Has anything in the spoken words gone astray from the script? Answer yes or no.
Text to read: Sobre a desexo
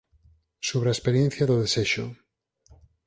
yes